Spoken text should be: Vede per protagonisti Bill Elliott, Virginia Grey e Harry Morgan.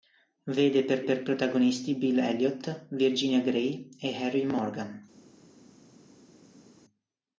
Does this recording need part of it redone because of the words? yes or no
yes